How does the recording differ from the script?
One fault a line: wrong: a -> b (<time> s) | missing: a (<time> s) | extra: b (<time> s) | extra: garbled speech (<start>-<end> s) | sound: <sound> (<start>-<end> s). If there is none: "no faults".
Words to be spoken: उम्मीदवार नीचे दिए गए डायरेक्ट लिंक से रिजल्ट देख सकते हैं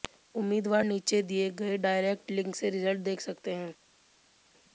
no faults